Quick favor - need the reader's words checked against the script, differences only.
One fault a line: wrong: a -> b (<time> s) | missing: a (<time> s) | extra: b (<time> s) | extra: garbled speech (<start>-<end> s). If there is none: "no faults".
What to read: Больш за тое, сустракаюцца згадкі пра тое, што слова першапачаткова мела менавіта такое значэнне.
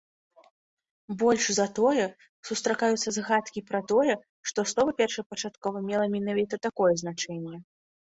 no faults